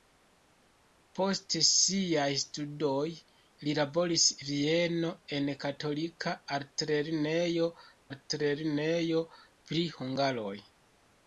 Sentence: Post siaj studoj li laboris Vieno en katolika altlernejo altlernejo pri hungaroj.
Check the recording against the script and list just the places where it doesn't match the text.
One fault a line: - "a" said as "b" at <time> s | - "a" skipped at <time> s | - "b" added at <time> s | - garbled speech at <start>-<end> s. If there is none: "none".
none